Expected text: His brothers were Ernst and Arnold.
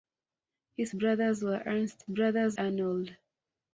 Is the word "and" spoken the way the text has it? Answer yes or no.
no